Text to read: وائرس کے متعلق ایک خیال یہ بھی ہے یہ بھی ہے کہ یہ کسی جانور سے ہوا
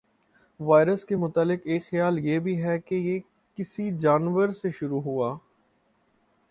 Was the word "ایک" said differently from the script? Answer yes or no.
no